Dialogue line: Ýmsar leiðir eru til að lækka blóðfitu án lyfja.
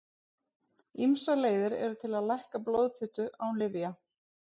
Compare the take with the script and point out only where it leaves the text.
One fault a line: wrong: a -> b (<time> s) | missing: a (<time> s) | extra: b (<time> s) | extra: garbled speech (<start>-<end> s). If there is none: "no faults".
no faults